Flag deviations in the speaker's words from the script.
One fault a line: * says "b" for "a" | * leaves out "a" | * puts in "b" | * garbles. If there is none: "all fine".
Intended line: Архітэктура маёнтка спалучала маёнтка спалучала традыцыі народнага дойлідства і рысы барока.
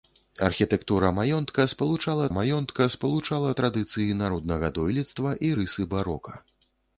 all fine